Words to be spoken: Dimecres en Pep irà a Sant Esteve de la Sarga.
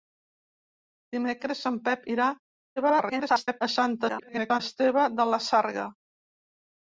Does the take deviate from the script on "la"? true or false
false